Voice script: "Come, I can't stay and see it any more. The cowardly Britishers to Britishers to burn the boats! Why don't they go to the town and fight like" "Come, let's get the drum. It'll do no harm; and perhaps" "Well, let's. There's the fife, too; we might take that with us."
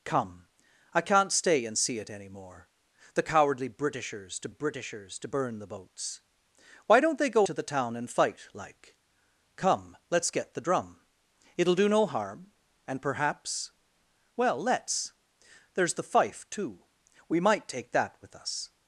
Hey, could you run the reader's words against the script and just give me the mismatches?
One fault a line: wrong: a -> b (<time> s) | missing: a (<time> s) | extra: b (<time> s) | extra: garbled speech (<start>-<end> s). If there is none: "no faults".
no faults